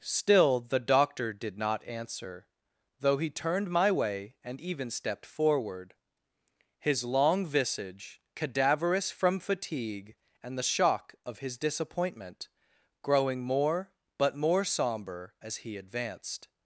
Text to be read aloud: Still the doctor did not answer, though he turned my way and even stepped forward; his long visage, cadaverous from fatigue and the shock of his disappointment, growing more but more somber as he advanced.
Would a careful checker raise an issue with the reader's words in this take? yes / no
no